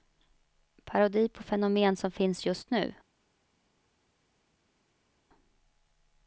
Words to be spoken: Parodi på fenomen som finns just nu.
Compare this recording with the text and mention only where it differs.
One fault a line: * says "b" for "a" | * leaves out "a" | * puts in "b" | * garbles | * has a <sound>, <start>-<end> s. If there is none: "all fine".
all fine